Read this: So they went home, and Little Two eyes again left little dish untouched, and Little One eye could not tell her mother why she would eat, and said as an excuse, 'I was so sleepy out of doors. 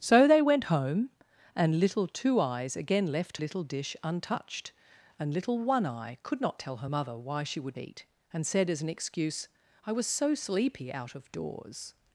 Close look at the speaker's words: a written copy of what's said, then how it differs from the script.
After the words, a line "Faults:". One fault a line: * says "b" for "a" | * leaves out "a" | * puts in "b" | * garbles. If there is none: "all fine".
So they went home, and Little Two eyes again left little dish untouched, and Little One eye could not tell her mother why she would eat, and said as an excuse, 'I was so sleepy out of doors.
Faults:
all fine